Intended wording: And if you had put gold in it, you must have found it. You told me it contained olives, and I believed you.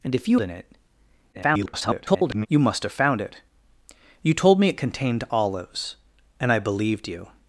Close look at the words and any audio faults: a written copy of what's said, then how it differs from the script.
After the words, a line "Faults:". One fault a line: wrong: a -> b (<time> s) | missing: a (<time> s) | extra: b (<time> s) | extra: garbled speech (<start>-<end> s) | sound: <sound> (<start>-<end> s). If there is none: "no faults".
And if you in it, [garbled] you must have found it. You told me it contained olives, and I believed you.
Faults:
missing: had put gold (0.4 s)
extra: garbled speech (1.3-2.5 s)